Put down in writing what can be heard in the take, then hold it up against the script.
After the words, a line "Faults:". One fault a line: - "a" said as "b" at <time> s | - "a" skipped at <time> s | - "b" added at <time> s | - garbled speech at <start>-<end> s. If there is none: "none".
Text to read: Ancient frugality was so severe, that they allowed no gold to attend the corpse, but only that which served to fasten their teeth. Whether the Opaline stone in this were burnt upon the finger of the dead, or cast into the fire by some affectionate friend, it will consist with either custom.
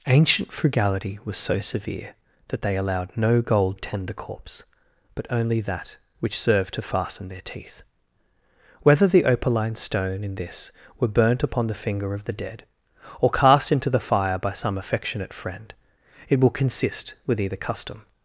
Ancient frugality was so severe, that they allowed no gold attend the corpse, but only that which served to fasten their teeth. Whether the Opaline stone in this were burnt upon the finger of the dead, or cast into the fire by some affectionate friend, it will consist with either custom.
Faults:
- "to" skipped at 3.8 s